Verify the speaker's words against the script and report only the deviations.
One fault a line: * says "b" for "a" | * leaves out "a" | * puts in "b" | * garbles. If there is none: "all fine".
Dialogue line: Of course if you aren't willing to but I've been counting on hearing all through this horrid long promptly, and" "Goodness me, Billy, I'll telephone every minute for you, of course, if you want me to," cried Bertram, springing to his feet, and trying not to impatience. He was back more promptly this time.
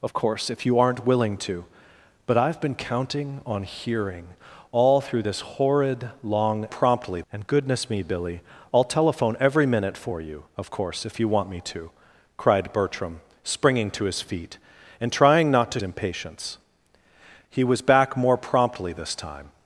all fine